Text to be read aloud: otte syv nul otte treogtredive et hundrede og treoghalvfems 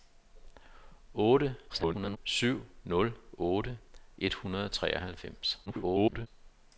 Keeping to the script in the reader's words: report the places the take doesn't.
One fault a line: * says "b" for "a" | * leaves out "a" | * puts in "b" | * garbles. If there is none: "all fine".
* garbles
* leaves out "treogtredive"
* garbles